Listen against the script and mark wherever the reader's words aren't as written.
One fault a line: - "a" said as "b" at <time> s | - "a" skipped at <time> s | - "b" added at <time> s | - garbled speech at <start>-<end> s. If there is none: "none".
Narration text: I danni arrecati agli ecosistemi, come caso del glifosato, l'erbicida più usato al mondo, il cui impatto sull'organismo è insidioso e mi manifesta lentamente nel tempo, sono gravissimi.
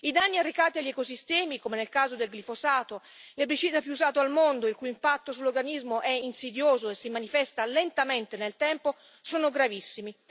- "nel" added at 1.8 s
- "mi" said as "si" at 7.0 s